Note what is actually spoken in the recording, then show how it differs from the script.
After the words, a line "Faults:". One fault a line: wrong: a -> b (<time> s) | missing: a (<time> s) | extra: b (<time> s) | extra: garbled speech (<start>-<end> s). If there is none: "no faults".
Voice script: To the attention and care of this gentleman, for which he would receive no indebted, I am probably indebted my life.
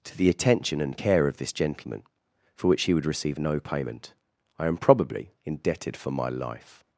To the attention and care of this gentleman, for which he would receive no payment, I am probably indebted for my life.
Faults:
wrong: indebted -> payment (3.6 s)
extra: for (6.0 s)